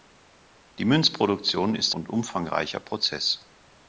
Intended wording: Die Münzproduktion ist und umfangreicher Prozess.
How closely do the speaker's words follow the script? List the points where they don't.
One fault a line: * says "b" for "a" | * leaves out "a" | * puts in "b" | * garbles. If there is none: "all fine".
all fine